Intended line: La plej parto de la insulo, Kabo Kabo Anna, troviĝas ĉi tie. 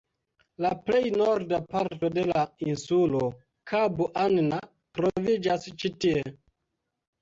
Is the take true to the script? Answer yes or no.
no